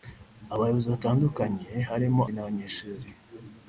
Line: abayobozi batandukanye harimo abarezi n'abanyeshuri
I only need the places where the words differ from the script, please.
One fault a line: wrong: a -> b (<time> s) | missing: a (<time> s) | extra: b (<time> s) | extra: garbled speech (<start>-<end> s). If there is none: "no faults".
missing: abarezi (2.2 s)